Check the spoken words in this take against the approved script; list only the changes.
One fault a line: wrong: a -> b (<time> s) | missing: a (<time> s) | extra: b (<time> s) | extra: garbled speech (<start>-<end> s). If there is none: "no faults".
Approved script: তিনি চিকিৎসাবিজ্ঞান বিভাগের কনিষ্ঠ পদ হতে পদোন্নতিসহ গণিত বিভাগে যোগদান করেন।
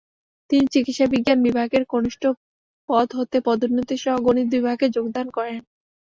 no faults